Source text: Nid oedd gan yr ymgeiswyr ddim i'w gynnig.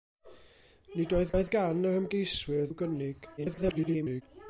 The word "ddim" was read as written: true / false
false